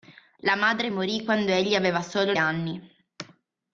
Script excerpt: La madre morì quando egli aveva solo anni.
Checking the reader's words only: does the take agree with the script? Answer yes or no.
yes